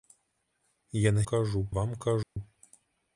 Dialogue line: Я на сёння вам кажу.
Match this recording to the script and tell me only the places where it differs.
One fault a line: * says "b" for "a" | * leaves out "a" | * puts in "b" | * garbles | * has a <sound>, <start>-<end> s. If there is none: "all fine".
* says "кажу" for "сёння"
* has a dropout, 2.2-2.4 s